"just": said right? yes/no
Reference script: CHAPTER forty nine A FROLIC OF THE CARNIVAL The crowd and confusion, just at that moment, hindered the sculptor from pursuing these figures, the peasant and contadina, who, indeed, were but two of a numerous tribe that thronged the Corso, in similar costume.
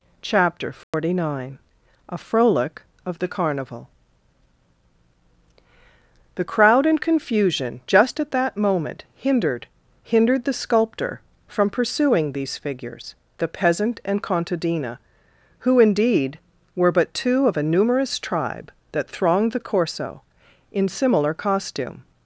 yes